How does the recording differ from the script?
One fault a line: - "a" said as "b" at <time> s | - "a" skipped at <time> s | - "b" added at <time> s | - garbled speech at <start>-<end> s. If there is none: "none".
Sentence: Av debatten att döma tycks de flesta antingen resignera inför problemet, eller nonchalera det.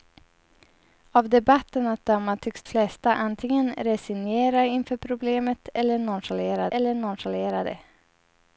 - "de" skipped at 2.6 s
- "eller nonchalera" added at 6.7 s